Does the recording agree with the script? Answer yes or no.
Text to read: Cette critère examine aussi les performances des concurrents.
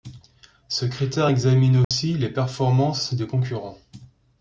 no